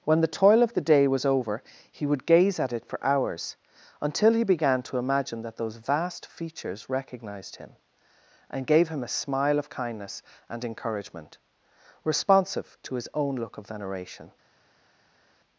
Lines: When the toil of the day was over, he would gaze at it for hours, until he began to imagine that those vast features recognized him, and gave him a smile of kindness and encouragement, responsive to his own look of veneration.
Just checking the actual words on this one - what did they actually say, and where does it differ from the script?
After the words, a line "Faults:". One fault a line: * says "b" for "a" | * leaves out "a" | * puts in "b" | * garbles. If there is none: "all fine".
When the toil of the day was over, he would gaze at it for hours, until he began to imagine that those vast features recognized him, and gave him a smile of kindness and encouragement, responsive to his own look of veneration.
Faults:
all fine